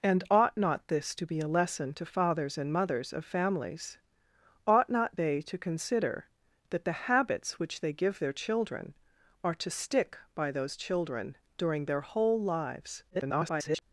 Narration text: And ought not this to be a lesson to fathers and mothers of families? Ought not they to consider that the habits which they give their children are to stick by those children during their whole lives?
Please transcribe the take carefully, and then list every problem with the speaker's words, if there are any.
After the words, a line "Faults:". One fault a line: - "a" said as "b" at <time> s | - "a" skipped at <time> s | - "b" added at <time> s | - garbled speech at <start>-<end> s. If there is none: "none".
And ought not this to be a lesson to fathers and mothers of families? Ought not they to consider that the habits which they give their children are to stick by those children during their whole lives? [garbled]
Faults:
- garbled speech at 13.1-13.8 s